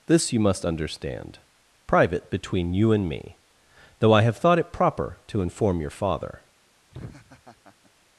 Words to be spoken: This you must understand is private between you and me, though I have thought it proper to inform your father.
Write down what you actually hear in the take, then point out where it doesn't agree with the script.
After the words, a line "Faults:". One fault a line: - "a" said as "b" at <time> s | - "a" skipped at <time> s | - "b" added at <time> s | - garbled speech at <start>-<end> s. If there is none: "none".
This you must understand private between you and me, though I have thought it proper to inform your father.
Faults:
- "is" skipped at 1.4 s